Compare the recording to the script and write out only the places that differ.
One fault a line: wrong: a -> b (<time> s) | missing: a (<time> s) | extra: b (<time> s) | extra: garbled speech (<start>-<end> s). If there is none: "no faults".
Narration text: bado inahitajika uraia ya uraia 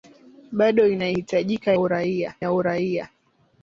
no faults